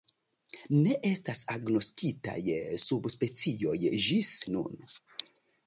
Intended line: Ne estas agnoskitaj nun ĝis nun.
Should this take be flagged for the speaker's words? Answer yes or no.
yes